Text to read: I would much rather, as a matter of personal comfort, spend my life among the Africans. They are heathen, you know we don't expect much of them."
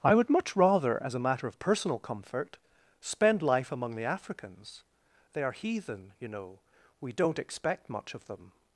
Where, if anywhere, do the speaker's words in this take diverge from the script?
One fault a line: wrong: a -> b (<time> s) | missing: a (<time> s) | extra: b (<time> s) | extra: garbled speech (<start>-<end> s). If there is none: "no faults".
missing: my (3.4 s)